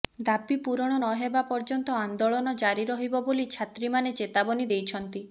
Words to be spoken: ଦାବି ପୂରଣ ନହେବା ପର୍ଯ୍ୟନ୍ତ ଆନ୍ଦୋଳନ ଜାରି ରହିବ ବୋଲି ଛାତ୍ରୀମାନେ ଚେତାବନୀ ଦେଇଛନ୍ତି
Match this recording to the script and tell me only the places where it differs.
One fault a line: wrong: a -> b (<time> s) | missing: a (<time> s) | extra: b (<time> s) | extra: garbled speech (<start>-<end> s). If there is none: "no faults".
no faults